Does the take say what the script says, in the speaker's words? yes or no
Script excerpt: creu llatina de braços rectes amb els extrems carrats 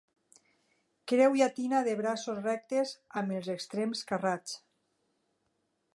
yes